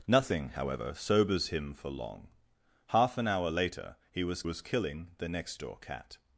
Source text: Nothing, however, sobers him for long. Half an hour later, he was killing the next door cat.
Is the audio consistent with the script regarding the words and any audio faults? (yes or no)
no